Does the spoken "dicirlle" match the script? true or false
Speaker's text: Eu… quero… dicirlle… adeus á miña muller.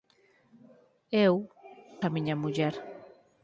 false